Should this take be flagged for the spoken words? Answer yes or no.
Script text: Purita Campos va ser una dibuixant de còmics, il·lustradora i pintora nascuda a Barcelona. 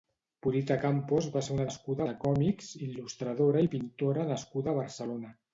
yes